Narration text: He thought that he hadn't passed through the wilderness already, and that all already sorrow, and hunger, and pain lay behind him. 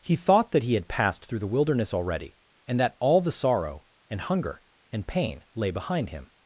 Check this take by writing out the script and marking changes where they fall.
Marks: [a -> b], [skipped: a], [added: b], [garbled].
He thought that he [hadn't -> had] passed through the wilderness already, and that all [already -> the] sorrow, and hunger, and pain lay behind him.